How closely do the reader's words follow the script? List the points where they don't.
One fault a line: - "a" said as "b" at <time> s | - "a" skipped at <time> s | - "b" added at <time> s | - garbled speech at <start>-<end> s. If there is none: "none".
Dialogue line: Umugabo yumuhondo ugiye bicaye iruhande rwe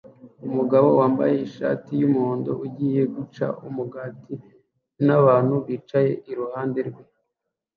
- "wambaye ishati" added at 1.0 s
- "guca umugati nabantu" added at 3.1 s